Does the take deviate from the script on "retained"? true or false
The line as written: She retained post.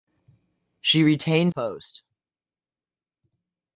false